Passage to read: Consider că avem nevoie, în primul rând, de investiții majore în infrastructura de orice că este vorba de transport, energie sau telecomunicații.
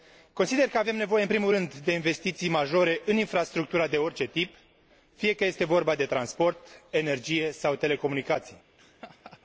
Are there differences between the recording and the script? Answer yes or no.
yes